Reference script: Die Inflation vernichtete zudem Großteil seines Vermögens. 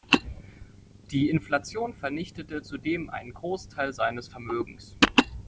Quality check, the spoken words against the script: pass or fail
fail